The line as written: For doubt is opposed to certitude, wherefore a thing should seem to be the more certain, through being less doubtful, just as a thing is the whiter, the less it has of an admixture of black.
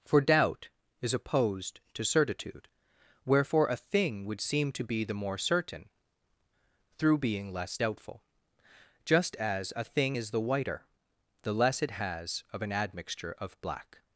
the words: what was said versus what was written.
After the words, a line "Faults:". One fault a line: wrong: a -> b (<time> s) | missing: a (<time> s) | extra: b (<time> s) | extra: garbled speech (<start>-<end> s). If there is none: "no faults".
For doubt is opposed to certitude, wherefore a thing would seem to be the more certain, through being less doubtful, just as a thing is the whiter, the less it has of an admixture of black.
Faults:
wrong: should -> would (4.2 s)